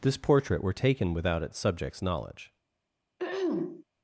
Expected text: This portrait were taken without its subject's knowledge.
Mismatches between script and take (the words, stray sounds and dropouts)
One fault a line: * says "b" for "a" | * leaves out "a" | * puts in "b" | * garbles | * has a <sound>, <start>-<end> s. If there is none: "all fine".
* has a throat clearing, 3.2-3.8 s